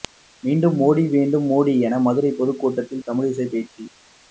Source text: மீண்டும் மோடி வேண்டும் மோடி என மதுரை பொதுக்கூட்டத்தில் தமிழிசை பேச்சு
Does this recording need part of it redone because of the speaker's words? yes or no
no